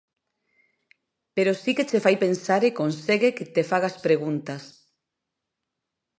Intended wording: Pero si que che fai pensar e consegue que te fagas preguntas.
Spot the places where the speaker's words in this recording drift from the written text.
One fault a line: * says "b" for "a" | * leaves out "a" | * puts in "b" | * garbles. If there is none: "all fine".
all fine